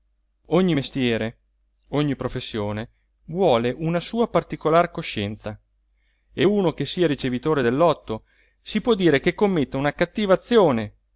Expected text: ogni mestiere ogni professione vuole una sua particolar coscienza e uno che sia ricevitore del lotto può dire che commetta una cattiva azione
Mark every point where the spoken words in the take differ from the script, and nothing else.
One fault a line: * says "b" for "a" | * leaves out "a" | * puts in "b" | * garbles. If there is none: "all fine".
* puts in "si"